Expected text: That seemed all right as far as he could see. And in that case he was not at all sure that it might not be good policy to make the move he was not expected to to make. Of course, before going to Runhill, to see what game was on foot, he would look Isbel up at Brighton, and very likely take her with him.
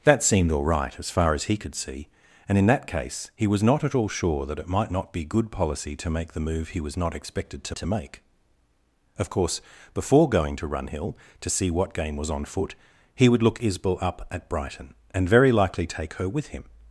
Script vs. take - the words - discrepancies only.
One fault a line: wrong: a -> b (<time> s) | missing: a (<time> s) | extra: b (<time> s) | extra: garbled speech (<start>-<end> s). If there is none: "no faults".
no faults